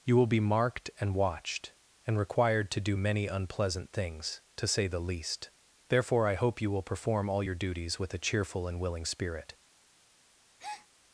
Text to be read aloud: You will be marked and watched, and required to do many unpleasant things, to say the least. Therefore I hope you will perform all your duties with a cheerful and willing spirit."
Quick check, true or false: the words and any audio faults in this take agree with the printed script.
false